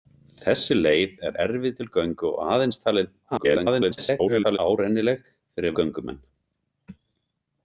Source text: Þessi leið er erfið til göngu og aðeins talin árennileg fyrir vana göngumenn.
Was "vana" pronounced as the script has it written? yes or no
no